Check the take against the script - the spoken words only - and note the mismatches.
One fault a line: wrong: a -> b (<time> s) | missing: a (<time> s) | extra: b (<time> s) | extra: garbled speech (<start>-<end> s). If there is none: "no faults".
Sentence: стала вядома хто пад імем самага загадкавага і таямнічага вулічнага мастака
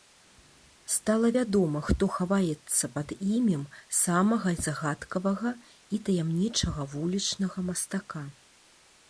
extra: хаваецца (2.2 s)